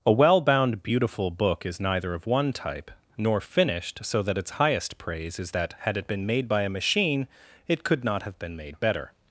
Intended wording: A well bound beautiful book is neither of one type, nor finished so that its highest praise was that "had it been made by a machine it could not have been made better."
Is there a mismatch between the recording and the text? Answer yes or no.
yes